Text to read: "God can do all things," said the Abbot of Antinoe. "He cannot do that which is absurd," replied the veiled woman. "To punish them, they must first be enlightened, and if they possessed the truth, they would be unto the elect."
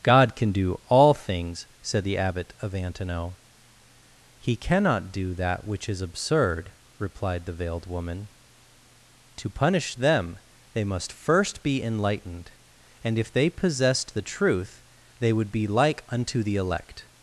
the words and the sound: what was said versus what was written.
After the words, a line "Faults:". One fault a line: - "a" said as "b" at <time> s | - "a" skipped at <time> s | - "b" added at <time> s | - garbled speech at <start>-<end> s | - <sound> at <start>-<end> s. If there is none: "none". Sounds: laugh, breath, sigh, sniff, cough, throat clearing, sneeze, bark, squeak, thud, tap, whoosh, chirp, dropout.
"God can do all things," said the Abbot of Antinoe. "He cannot do that which is absurd," replied the veiled woman. "To punish them, they must first be enlightened, and if they possessed the truth, they would be like unto the elect."
Faults:
- "like" added at 15.7 s